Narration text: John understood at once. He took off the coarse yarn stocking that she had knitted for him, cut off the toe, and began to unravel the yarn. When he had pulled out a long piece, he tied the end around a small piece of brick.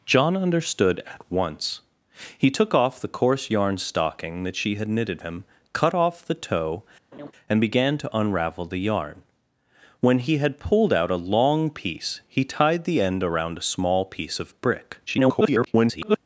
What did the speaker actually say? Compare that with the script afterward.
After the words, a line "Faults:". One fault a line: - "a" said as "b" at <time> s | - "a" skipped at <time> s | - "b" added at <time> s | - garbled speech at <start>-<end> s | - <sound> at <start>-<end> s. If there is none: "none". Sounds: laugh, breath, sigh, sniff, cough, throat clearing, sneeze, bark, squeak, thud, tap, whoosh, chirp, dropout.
John understood at once. He took off the coarse yarn stocking that she had knitted him, cut off the toe, and began to unravel the yarn. When he had pulled out a long piece, he tied the end around a small piece of brick. [garbled]
Faults:
- "for" skipped at 5.2 s
- laugh at 7.1-7.3 s
- garbled speech at 15.1-16.2 s